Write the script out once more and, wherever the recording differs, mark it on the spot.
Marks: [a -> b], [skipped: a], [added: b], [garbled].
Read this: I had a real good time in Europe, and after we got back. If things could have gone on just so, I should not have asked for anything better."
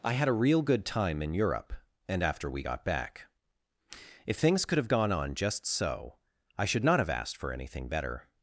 I had a real good time in Europe, and after we got back. If things could have gone on just so, I should not have asked for anything better."